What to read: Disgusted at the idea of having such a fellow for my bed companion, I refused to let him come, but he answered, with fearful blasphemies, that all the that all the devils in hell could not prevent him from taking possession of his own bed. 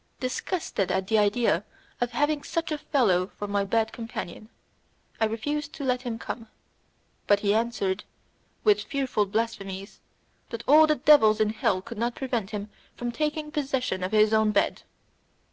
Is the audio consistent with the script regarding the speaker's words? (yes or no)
no